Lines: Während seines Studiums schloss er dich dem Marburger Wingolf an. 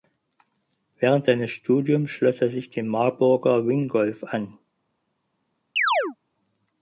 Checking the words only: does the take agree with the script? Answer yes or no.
no